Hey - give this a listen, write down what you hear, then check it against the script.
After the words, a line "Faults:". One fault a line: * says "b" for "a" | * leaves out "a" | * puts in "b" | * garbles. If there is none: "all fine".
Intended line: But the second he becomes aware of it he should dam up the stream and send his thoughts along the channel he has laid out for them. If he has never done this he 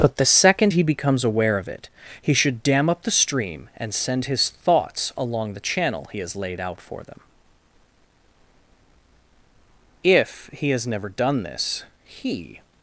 But the second he becomes aware of it he should dam up the stream and send his thoughts along the channel he has laid out for them. If he has never done this he
Faults:
all fine